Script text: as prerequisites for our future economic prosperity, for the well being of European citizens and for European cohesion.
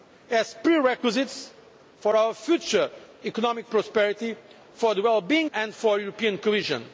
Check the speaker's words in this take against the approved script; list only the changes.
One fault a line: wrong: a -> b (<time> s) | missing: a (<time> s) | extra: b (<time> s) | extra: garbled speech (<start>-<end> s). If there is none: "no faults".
missing: of European citizens (5.5 s)